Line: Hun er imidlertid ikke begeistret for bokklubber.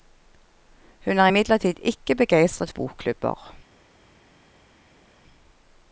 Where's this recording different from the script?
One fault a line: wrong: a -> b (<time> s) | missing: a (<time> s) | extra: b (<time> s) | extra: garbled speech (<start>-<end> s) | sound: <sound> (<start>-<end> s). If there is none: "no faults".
missing: for (2.7 s)